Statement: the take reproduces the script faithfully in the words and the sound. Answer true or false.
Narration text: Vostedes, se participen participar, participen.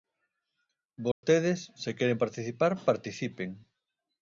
false